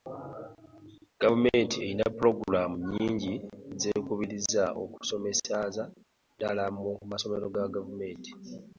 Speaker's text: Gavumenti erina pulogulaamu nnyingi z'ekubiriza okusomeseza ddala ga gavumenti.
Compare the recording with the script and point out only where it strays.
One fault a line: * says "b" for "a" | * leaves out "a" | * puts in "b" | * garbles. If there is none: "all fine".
* puts in "mu masomero"